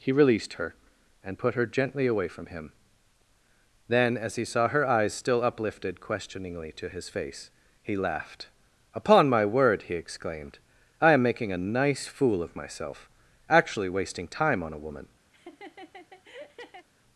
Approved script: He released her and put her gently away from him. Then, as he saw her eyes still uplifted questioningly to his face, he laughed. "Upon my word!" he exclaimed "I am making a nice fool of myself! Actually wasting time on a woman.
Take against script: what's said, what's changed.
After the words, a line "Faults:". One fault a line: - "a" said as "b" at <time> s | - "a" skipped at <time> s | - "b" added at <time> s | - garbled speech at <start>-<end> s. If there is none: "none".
He released her and put her gently away from him. Then, as he saw her eyes still uplifted questioningly to his face, he laughed. "Upon my word!" he exclaimed "I am making a nice fool of myself! Actually wasting time on a woman.
Faults:
none